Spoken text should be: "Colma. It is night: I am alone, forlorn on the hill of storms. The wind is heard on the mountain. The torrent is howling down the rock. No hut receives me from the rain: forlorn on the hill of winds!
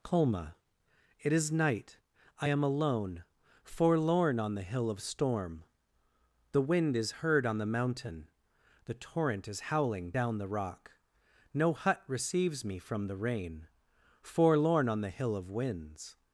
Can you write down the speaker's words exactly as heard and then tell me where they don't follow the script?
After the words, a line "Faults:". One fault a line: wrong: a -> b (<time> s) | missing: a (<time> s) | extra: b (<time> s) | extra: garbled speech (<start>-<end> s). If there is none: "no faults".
"Colma. It is night: I am alone, forlorn on the hill of storm. The wind is heard on the mountain. The torrent is howling down the rock. No hut receives me from the rain: forlorn on the hill of winds!
Faults:
wrong: storms -> storm (5.0 s)